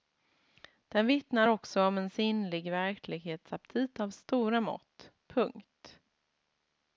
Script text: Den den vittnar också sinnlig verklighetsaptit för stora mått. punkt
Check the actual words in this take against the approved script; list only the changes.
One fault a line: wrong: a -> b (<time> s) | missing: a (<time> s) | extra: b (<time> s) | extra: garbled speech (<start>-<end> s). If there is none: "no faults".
missing: den (1.1 s)
extra: om en (1.8 s)
wrong: för -> av (4.0 s)